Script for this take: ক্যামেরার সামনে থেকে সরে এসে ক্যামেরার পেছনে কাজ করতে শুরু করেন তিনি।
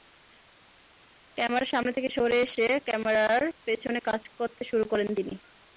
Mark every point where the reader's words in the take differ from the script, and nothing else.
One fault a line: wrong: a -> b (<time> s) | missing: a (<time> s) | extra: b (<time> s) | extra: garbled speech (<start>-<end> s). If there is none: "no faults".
no faults